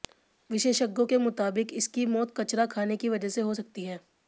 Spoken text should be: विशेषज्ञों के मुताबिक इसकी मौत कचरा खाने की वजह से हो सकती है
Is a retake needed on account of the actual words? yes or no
no